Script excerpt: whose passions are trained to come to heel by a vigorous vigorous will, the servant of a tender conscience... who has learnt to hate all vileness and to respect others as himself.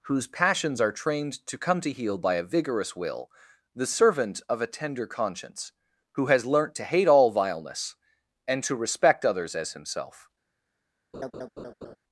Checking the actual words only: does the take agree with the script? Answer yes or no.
no